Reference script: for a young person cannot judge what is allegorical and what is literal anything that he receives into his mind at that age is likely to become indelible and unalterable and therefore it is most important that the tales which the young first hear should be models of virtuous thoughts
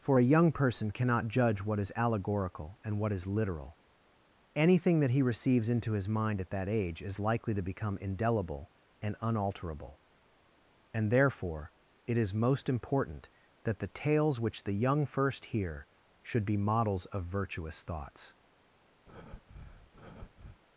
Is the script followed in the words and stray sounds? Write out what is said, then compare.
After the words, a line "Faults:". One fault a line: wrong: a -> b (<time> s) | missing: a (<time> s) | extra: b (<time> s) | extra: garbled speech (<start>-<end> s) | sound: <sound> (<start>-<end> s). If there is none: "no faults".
for a young person cannot judge what is allegorical and what is literal anything that he receives into his mind at that age is likely to become indelible and unalterable and therefore it is most important that the tales which the young first hear should be models of virtuous thoughts
Faults:
sound: breath (19.1-20.6 s)